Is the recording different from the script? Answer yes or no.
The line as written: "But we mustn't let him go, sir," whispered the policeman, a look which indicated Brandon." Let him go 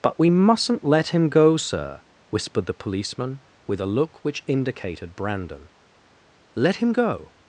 yes